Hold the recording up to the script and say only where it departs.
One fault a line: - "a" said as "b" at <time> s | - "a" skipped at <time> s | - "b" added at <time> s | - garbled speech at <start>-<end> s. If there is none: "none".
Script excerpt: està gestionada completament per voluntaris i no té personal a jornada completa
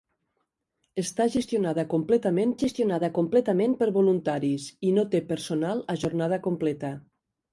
- "gestionada completament" added at 2.6 s